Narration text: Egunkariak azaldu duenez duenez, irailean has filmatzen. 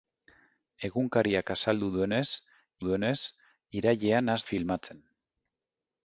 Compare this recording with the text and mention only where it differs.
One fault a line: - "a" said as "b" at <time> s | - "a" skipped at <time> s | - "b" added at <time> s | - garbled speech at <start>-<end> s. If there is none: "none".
none